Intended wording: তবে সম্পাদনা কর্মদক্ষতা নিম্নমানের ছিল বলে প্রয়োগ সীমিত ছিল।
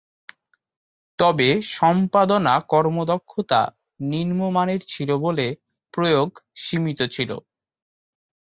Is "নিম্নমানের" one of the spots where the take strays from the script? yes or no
no